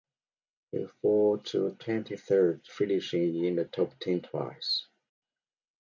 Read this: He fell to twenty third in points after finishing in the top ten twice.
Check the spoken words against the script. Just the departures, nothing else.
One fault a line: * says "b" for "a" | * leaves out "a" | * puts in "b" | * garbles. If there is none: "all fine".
* leaves out "in points after"